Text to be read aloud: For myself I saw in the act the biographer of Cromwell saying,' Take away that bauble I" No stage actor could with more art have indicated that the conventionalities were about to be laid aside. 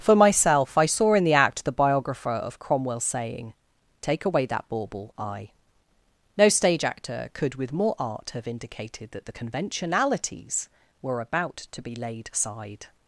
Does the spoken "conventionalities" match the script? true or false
true